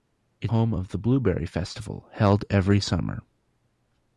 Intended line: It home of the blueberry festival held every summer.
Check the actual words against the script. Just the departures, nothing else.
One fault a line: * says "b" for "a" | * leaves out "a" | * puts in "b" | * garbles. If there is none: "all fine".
all fine